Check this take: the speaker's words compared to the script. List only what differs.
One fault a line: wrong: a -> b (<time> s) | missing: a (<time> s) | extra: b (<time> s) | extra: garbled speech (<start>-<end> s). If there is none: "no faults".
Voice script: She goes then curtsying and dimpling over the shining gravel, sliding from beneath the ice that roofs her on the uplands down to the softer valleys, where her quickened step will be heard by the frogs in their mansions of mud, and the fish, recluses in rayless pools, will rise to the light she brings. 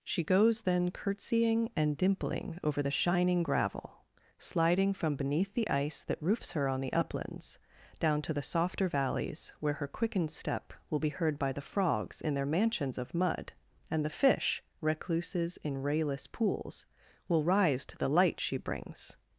no faults